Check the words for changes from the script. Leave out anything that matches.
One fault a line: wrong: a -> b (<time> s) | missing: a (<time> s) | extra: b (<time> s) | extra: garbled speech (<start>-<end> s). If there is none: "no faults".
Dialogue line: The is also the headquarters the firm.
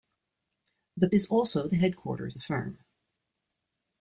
no faults